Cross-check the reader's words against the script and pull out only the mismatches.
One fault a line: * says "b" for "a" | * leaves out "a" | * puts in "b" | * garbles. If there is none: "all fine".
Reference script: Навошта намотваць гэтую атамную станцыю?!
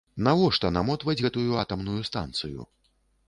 all fine